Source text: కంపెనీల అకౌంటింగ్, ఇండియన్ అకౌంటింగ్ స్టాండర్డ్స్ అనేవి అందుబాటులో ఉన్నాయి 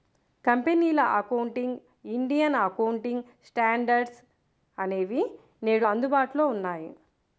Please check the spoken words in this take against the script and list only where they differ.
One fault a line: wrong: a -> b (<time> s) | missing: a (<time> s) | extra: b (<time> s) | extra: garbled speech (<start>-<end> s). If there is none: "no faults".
extra: నేడు (5.6 s)